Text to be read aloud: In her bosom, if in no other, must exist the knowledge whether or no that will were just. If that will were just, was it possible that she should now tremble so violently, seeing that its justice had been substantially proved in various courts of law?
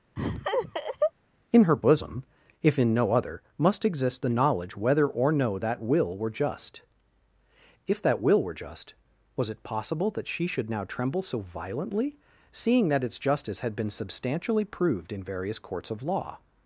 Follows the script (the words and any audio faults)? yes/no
no